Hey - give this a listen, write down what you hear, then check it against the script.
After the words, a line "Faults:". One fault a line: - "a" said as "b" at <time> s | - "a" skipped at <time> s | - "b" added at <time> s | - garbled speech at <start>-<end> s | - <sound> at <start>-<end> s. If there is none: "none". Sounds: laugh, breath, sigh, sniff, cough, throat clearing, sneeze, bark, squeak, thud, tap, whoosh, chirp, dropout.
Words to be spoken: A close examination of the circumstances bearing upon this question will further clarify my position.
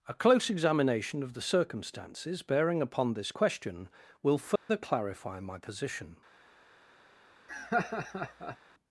A close examination of the circumstances bearing upon this question will further clarify my position.
Faults:
- dropout at 4.6-4.7 s
- laugh at 7.5-8.6 s